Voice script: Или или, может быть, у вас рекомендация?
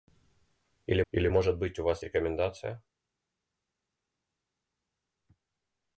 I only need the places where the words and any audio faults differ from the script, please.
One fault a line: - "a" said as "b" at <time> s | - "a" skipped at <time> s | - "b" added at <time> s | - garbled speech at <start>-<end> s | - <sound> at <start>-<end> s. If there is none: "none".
none